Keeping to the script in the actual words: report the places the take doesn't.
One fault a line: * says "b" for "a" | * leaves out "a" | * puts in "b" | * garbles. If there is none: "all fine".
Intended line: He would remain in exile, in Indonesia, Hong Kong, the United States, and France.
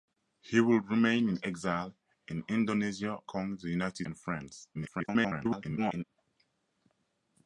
* leaves out "Hong"
* leaves out "States"
* garbles